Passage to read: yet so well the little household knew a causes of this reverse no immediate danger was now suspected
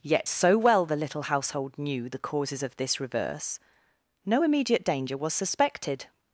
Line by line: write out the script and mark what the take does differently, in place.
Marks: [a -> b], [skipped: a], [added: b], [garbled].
yet so well the little household knew [a -> the] causes of this reverse no immediate danger was [skipped: now] suspected